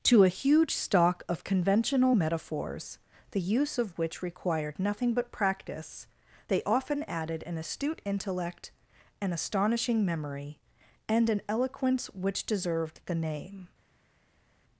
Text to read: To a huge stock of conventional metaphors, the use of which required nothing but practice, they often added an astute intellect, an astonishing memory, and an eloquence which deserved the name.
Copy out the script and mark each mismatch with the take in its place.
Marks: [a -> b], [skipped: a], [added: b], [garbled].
To a huge stock of conventional metaphors, the use of which required nothing but practice, they often added an astute intellect, an astonishing memory, and an eloquence which deserved the name.